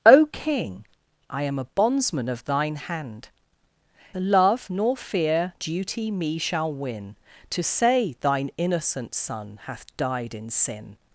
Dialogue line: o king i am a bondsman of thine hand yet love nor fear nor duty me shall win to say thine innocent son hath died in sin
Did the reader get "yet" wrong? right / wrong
wrong